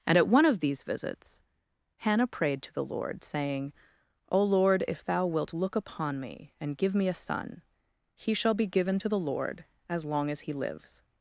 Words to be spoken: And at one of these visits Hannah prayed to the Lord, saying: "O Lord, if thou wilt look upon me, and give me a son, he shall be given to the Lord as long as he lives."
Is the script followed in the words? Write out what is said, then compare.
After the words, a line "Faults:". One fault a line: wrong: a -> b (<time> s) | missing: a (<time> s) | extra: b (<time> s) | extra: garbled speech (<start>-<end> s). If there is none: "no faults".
And at one of these visits Hannah prayed to the Lord, saying: "O Lord, if thou wilt look upon me, and give me a son, he shall be given to the Lord as long as he lives."
Faults:
no faults